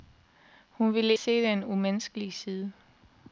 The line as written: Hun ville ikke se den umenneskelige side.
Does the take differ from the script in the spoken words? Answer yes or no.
yes